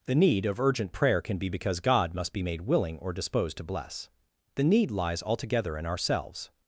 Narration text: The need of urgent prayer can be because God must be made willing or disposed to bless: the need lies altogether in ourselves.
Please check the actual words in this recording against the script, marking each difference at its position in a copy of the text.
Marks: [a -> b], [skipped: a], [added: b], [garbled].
The need of urgent prayer can be because God must be made willing or disposed to bless: the need lies altogether in ourselves.